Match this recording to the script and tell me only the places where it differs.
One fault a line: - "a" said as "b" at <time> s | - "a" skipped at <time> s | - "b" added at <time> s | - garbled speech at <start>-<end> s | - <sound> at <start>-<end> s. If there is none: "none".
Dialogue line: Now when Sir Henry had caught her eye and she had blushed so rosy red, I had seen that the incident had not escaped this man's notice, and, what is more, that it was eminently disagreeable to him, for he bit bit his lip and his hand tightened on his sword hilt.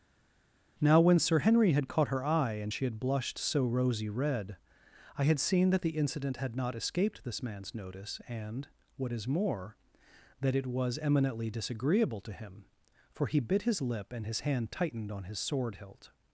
- "bit" skipped at 13.6 s